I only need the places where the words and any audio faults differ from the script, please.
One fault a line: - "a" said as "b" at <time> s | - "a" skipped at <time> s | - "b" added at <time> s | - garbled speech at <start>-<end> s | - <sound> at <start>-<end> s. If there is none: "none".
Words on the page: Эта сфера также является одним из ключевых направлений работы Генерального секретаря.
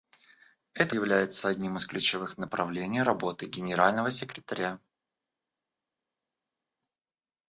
- "сфера также" skipped at 0.9 s